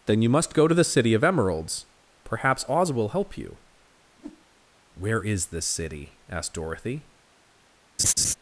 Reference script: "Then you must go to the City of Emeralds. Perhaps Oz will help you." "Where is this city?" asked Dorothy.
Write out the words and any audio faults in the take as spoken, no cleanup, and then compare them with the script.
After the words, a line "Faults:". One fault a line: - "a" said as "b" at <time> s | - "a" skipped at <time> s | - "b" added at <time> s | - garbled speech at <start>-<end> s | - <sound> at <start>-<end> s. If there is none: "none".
"Then you must go to the City of Emeralds. Perhaps Oz will help you." "Where is this city?" asked Dorothy.
Faults:
- whoosh at 4.1-4.5 s
- laugh at 8.0-8.3 s